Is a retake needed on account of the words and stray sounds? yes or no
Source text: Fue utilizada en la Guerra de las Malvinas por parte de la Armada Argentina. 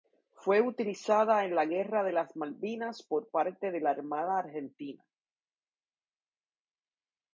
no